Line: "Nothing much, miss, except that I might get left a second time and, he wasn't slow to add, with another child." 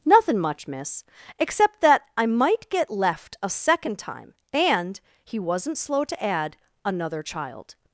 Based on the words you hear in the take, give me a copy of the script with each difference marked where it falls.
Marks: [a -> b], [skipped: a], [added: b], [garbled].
"Nothing much, miss, except that I might get left a second time and, he wasn't slow to add, [skipped: with] another child."